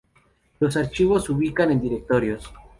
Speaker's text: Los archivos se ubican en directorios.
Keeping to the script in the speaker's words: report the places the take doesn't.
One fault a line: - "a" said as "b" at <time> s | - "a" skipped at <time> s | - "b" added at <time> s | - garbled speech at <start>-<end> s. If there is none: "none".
none